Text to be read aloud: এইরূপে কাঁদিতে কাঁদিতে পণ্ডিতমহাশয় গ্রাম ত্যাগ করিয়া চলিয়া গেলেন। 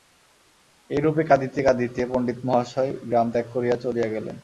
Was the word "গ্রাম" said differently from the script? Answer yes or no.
no